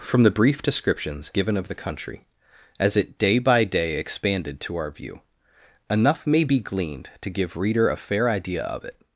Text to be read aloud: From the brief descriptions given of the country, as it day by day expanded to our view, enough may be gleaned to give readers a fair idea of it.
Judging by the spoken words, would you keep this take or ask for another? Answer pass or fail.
fail